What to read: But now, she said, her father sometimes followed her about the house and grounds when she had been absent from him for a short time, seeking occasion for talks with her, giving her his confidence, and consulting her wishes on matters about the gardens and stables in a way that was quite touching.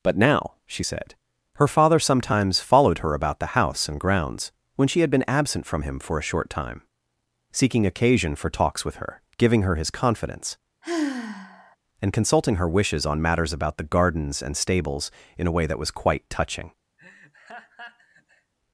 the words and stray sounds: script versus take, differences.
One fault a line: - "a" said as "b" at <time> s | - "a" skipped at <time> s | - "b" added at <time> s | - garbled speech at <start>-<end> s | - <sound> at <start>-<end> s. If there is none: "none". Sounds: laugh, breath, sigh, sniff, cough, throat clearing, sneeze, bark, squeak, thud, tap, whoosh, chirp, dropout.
- sigh at 10.8-11.8 s
- laugh at 17.0-18.5 s